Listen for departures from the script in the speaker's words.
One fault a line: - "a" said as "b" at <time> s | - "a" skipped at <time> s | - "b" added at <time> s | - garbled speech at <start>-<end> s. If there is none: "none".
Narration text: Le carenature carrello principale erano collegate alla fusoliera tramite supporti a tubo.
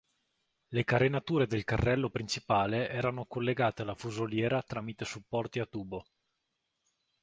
- "del" added at 1.4 s